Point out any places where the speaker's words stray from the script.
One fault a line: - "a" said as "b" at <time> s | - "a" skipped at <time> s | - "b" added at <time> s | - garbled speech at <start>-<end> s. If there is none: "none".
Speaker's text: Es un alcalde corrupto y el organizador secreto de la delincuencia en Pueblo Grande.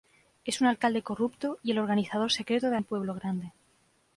- "la delincuencia" skipped at 2.8 s